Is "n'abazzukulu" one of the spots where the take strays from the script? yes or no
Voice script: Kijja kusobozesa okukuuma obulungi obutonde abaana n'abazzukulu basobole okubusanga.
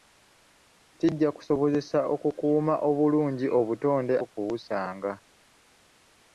yes